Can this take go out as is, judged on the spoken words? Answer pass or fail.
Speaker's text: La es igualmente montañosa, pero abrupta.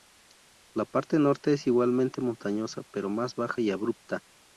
fail